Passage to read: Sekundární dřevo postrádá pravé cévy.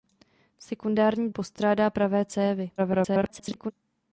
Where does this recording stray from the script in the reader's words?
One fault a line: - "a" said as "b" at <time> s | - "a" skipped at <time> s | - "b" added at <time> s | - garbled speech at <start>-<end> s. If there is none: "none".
- "dřevo" skipped at 1.3 s
- garbled speech at 2.8-3.7 s